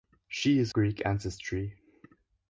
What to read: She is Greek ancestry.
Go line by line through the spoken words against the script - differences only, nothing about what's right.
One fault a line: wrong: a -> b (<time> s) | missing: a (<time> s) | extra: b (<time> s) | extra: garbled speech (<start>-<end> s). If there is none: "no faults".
no faults